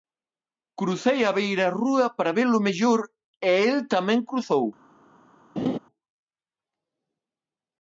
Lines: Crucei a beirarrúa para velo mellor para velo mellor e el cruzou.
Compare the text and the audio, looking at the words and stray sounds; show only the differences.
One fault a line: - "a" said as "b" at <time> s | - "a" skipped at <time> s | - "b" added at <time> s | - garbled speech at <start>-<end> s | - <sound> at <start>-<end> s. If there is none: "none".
- "para velo mellor" skipped at 3.0 s
- "tamén" added at 3.9 s
- laugh at 5.6-5.8 s